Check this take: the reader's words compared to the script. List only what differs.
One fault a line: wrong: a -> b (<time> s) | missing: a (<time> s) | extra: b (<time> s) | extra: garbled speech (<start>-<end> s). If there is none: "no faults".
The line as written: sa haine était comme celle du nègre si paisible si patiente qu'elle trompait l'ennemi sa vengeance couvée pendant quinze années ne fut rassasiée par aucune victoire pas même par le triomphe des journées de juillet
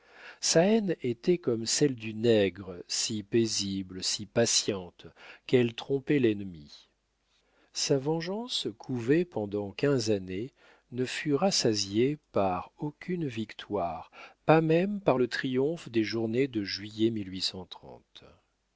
no faults